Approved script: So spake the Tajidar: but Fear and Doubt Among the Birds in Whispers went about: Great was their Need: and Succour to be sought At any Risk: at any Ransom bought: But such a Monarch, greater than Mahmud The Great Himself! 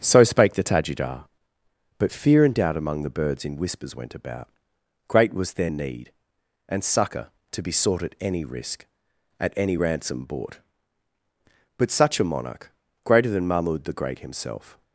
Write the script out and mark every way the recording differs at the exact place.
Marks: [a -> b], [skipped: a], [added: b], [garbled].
So spake the Tajidar: but Fear and Doubt Among the Birds in Whispers went about: Great was their Need: and Succour to be sought At any Risk: at any Ransom bought: But such a Monarch, greater than Mahmud The Great Himself!